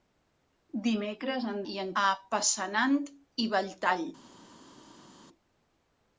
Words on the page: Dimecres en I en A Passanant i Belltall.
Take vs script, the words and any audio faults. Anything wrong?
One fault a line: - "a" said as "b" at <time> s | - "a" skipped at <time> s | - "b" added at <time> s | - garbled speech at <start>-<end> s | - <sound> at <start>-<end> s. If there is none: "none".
none